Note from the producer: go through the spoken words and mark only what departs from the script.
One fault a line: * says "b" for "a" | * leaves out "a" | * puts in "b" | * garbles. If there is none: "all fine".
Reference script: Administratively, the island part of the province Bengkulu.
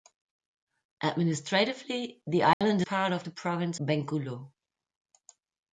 all fine